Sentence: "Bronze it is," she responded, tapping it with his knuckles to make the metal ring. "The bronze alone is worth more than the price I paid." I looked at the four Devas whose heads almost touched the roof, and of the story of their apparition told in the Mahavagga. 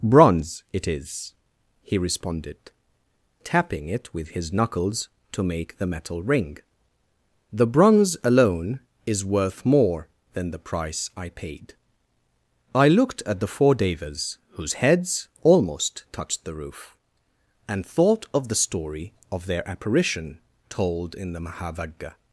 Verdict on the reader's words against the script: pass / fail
fail